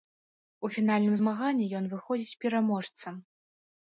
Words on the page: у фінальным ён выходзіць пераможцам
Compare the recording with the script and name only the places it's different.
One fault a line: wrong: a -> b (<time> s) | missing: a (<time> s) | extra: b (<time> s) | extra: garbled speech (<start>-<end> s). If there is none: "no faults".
extra: змаганні (1.2 s)